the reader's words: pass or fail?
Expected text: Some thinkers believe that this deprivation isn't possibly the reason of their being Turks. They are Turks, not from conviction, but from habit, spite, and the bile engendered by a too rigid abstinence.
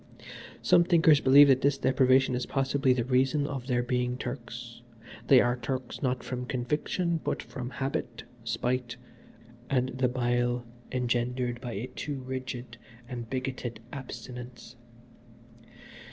fail